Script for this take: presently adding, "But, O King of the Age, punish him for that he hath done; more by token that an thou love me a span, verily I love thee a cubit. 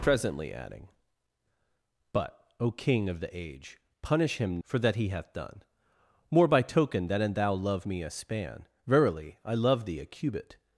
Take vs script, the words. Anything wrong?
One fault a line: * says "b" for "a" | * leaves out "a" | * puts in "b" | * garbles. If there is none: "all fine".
all fine